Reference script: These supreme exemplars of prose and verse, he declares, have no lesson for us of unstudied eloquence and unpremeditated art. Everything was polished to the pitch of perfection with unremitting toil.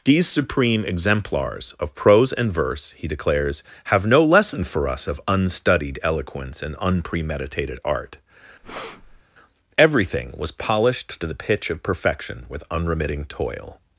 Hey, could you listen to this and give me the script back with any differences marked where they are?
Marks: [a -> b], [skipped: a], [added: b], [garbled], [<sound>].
These supreme exemplars of prose and verse, he declares, have no lesson for us of unstudied eloquence and unpremeditated art. [breath] Everything was polished to the pitch of perfection with unremitting toil.